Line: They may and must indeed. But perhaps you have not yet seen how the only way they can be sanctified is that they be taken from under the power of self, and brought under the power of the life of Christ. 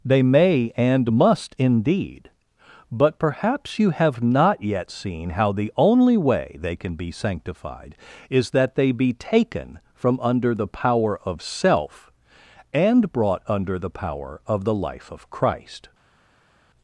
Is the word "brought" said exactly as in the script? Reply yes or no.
yes